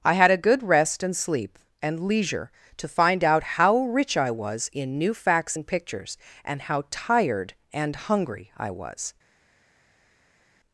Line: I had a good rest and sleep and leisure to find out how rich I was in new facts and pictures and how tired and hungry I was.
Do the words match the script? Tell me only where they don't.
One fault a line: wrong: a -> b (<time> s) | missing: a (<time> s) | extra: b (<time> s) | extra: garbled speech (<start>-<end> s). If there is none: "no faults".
no faults